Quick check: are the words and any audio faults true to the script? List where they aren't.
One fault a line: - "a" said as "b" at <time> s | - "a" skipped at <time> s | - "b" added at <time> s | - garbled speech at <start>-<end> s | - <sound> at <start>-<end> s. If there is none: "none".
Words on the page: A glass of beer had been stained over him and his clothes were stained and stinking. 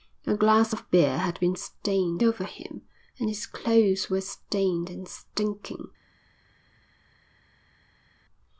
none